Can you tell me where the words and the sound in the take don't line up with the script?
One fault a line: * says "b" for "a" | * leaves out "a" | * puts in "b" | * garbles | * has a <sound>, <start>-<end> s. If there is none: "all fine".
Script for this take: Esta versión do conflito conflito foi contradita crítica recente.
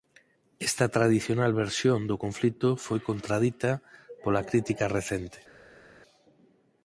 * puts in "tradicional"
* leaves out "conflito"
* puts in "pola"